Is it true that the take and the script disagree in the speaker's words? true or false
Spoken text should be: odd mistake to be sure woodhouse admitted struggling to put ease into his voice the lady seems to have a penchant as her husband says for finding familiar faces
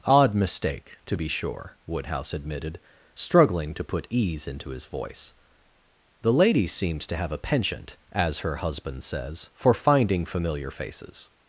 false